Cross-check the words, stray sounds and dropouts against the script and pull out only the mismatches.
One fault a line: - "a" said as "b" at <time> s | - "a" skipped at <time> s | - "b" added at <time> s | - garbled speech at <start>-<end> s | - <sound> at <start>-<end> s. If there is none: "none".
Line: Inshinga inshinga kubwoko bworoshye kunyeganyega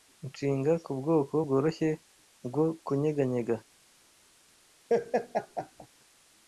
- "inshinga" skipped at 0.7 s
- "bwo" added at 2.5 s
- laugh at 4.9-5.9 s